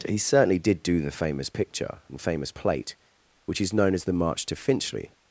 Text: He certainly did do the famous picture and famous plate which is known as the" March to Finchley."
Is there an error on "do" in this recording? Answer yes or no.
no